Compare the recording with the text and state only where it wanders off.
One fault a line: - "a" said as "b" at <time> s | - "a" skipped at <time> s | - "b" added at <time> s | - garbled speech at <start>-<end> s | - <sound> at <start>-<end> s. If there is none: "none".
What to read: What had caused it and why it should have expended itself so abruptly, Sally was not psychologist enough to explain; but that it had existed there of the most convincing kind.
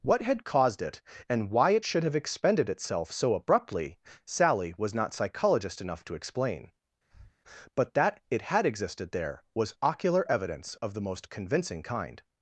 - breath at 7.1-7.4 s
- "was ocular evidence" added at 9.5 s